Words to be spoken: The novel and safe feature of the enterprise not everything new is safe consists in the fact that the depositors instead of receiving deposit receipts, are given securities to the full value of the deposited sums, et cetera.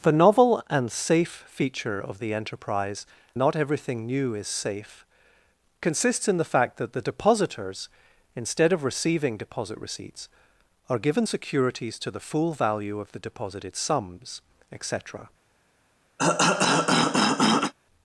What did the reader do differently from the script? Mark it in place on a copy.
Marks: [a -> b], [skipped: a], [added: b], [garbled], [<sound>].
The novel and safe feature of the enterprise not everything new is safe consists in the fact that the depositors instead of receiving deposit receipts, are given securities to the full value of the deposited sums, et cetera. [cough]